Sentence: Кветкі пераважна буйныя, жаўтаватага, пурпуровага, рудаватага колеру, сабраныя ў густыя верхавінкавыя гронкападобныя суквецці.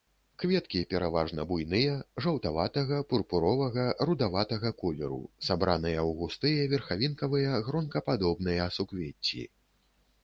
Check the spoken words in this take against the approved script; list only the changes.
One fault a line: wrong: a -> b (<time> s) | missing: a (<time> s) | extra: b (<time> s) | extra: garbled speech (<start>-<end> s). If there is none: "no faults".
no faults